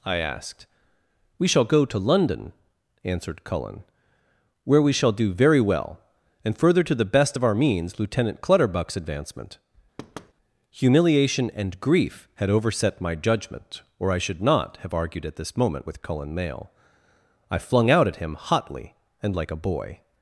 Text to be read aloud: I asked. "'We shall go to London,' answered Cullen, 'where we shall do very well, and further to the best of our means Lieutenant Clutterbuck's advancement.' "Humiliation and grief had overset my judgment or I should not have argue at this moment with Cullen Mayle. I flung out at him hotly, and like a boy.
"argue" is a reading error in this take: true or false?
true